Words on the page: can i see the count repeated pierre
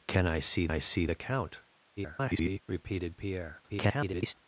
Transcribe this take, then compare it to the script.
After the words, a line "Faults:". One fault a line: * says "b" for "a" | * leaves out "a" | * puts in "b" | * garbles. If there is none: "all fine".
can i see i see the count [garbled] repeated pierre [garbled]
Faults:
* puts in "i see"
* garbles
* garbles